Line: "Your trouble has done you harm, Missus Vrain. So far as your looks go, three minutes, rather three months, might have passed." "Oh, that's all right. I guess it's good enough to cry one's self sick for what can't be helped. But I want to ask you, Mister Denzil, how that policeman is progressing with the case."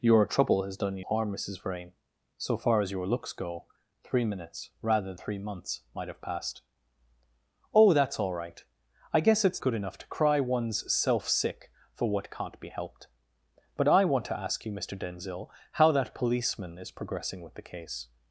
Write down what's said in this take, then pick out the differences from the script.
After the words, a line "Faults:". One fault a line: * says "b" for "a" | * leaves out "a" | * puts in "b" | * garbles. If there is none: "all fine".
"Your trouble has done you harm, Missus Vrain. So far as your looks go, three minutes, rather three months, might have passed." "Oh, that's all right. I guess it's good enough to cry one's self sick for what can't be helped. But I want to ask you, Mister Denzil, how that policeman is progressing with the case."
Faults:
all fine